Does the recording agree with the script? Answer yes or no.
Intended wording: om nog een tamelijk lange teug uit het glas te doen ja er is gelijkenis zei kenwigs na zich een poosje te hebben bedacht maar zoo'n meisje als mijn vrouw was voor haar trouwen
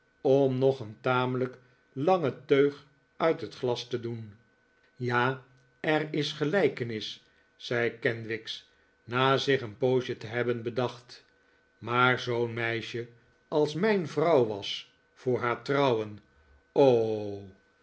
yes